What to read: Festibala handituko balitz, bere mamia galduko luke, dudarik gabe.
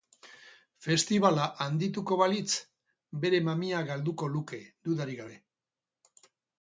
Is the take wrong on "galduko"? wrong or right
right